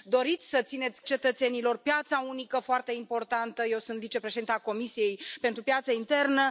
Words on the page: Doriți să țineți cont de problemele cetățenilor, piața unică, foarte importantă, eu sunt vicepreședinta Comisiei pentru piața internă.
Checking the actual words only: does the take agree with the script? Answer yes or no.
no